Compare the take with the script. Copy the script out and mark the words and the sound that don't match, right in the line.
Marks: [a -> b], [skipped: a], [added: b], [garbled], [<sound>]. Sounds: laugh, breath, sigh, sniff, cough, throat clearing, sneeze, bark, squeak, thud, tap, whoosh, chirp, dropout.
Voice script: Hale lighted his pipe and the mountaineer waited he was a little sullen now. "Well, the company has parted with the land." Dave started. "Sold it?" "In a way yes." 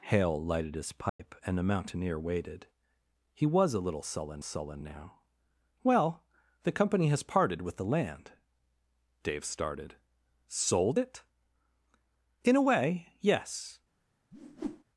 Hale lighted his pipe [dropout] and the mountaineer waited he was a little sullen [added: sullen] now. "Well, the company has parted with the land." Dave started. "Sold it?" "In a way yes." [whoosh]